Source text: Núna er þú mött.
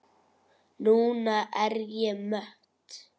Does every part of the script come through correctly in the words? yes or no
no